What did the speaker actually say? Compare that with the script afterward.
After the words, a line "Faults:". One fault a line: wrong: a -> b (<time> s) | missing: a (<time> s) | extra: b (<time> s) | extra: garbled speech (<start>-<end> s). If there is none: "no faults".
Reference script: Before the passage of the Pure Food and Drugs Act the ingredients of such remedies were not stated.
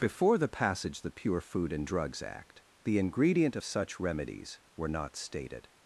Before the passage of the Pure Food and Drugs Act the ingredient of such remedies were not stated.
Faults:
wrong: ingredients -> ingredient (3.0 s)